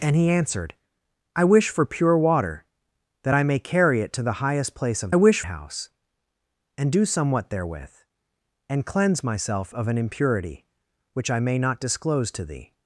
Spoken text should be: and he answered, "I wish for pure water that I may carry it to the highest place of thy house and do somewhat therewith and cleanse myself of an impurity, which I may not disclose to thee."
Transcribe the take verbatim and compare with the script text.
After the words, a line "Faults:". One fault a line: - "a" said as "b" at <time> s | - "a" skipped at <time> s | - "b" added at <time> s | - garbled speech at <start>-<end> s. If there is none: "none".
and he answered, "I wish for pure water that I may carry it to the highest place of wish house and do somewhat therewith and cleanse myself of an impurity, which I may not disclose to thee."
Faults:
- "thy" said as "wish" at 5.1 s